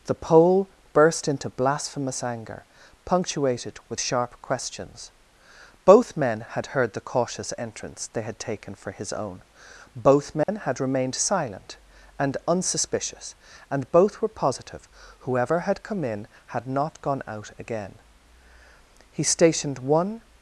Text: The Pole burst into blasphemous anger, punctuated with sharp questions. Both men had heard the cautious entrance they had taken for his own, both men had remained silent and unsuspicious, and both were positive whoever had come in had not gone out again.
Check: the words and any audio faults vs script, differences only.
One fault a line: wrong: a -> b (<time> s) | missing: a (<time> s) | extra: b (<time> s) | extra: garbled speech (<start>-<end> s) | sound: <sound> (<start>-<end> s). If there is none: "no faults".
sound: dropout (10.4-10.5 s)
extra: He stationed one (19.1 s)